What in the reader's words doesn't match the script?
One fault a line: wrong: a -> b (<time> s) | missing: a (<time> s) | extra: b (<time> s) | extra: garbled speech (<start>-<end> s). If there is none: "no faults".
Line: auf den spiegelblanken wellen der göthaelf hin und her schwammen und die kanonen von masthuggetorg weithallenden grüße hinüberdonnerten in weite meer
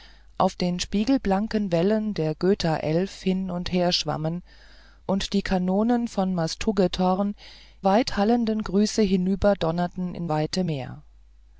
no faults